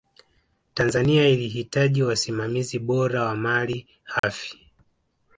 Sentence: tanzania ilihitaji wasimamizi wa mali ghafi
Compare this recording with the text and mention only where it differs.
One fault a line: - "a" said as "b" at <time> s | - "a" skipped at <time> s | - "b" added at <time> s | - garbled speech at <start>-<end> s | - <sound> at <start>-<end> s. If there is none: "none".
- "bora" added at 2.8 s
- dropout at 4.2-4.2 s